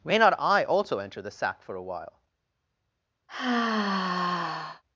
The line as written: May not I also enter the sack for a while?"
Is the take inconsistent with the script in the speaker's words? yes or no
no